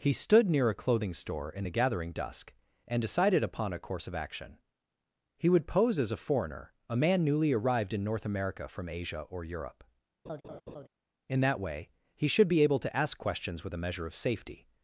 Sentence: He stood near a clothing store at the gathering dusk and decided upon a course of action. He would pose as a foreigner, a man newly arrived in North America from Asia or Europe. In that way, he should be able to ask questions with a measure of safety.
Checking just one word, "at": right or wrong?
wrong